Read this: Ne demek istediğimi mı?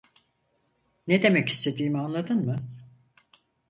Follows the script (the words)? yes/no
no